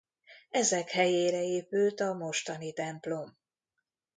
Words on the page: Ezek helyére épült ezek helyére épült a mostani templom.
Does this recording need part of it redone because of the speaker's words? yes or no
yes